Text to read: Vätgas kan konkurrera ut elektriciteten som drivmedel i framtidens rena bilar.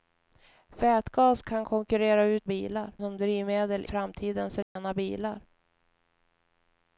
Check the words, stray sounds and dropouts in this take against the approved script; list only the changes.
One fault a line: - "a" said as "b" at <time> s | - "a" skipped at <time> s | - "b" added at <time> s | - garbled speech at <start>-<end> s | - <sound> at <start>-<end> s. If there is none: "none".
- "elektriciteten" said as "bilar" at 2.5 s
- "i" skipped at 3.9 s
- dropout at 4.6-4.8 s